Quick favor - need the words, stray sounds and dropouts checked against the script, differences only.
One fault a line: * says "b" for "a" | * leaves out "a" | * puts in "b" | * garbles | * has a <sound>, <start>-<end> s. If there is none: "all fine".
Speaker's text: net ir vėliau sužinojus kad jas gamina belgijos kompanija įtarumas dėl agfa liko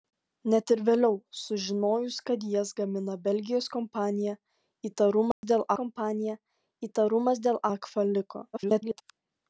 * has a dropout, 5.3-5.4 s
* puts in "kompanija įtarumas dėl"
* garbles